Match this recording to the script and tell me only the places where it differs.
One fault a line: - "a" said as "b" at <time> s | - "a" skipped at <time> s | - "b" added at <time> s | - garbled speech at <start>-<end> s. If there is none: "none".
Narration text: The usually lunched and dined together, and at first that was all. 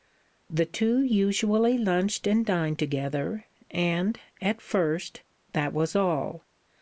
- "two" added at 0.7 s